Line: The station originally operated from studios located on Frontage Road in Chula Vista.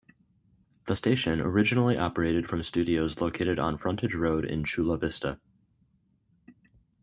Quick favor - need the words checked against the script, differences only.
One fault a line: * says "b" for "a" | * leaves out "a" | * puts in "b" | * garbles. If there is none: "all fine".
all fine